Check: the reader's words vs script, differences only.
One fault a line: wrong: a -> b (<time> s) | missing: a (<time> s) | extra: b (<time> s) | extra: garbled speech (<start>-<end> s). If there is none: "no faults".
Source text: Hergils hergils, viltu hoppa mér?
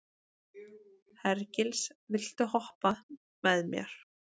missing: hergils (1.9 s)
extra: með (3.5 s)